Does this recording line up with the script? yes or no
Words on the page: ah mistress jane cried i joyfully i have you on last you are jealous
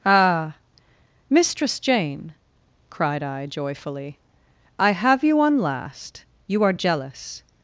yes